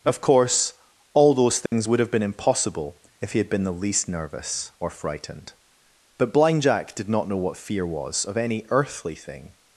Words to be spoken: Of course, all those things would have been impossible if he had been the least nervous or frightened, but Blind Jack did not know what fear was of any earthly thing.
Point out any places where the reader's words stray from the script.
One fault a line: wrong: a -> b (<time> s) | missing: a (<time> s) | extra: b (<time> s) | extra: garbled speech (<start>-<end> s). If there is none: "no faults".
no faults